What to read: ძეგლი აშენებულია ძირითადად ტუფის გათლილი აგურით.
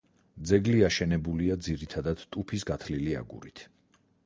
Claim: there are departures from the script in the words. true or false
false